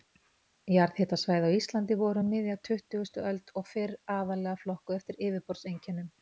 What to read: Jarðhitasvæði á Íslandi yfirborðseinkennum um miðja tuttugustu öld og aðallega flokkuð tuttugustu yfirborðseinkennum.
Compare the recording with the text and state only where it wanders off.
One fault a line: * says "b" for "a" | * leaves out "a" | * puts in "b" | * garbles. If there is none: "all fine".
* says "voru" for "yfirborðseinkennum"
* puts in "fyrr"
* says "eftir" for "tuttugustu"